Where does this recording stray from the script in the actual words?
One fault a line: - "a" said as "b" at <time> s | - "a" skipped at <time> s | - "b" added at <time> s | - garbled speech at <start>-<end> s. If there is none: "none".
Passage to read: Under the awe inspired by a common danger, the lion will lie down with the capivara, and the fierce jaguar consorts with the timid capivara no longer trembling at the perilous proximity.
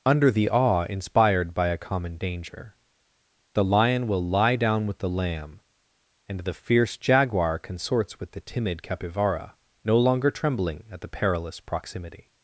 - "capivara" said as "lamb" at 5.1 s